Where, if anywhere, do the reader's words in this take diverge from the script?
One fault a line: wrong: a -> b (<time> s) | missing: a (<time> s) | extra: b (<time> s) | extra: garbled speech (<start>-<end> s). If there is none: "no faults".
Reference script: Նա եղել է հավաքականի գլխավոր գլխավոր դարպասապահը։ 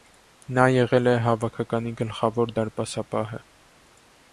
missing: գլխավոր (2.6 s)